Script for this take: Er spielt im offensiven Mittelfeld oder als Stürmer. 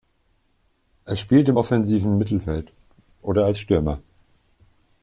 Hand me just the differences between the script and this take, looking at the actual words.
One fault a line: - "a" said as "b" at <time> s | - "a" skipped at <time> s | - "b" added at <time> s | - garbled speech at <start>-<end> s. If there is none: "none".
none